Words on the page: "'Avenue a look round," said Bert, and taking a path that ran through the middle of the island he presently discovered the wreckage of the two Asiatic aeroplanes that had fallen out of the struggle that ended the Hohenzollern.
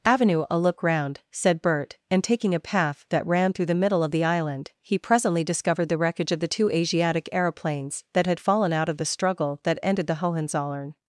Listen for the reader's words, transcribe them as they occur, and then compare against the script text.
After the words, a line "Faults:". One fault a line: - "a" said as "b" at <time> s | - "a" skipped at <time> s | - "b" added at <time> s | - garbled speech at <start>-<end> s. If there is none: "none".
"'Avenue a look round," said Bert, and taking a path that ran through the middle of the island he presently discovered the wreckage of the two Asiatic aeroplanes that had fallen out of the struggle that ended the Hohenzollern.
Faults:
none